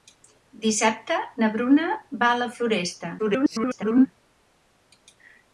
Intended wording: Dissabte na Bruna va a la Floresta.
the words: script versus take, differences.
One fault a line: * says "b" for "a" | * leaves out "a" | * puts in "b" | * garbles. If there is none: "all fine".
* garbles